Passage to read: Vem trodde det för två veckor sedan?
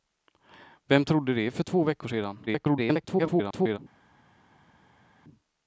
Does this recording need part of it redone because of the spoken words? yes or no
yes